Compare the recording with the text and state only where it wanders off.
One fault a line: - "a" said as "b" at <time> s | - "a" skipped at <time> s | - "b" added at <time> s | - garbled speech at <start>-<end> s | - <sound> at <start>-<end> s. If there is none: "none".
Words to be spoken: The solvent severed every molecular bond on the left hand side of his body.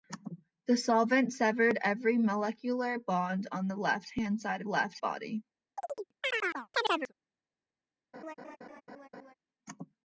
- "his" said as "left" at 4.6 s
- chirp at 5.8-7.1 s
- laugh at 8.1-9.3 s